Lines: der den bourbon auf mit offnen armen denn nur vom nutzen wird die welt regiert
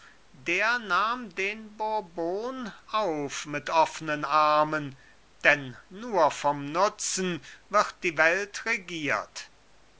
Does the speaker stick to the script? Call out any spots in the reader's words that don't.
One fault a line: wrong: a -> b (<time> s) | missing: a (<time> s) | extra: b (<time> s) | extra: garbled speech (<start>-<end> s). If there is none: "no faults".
extra: nahm (0.8 s)